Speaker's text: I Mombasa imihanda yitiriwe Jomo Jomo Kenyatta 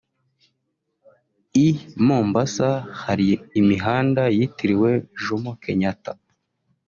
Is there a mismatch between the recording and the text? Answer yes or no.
yes